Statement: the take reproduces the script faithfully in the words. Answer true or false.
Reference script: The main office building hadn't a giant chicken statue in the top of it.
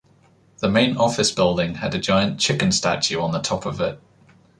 false